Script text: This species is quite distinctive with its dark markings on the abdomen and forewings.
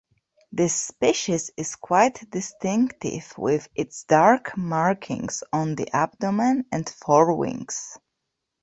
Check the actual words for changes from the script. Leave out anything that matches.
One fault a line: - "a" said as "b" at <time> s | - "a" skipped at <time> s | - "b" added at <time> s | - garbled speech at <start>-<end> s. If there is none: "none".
none